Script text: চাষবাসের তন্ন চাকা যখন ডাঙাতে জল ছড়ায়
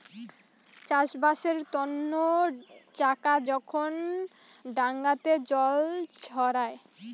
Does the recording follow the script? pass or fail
pass